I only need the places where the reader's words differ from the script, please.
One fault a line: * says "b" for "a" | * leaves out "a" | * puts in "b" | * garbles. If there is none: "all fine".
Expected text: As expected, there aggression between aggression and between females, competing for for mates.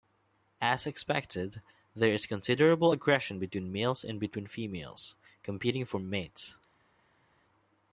* puts in "is considerable"
* says "males" for "aggression"
* leaves out "for"